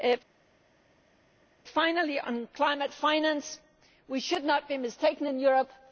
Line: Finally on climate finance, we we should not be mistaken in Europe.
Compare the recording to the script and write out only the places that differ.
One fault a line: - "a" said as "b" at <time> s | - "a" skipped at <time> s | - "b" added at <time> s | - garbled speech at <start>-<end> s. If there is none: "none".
- "we" skipped at 4.2 s